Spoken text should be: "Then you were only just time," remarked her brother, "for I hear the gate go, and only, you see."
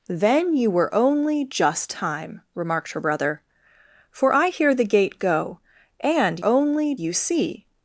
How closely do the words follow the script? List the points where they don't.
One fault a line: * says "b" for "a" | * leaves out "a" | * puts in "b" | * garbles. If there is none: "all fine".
all fine